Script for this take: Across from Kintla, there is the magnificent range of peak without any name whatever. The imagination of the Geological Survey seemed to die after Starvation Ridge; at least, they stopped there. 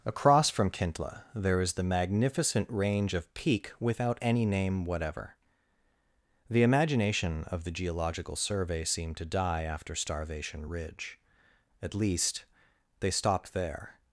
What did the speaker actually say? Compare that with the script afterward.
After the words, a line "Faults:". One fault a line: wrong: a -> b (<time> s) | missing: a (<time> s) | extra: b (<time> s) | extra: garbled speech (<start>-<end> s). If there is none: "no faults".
Across from Kintla, there is the magnificent range of peak without any name whatever. The imagination of the Geological Survey seemed to die after Starvation Ridge; at least, they stopped there.
Faults:
no faults